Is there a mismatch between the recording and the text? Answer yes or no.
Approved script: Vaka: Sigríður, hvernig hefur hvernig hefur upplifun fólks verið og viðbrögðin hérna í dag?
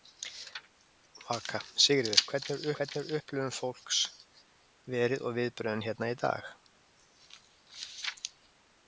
no